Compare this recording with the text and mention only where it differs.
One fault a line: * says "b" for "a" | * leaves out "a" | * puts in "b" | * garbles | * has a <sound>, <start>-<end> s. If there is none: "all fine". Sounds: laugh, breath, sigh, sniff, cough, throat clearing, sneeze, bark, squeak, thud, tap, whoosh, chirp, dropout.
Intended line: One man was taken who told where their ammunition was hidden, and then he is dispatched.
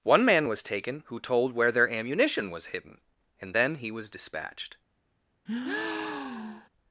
* says "was" for "is"
* has a breath, 5.5-6.7 s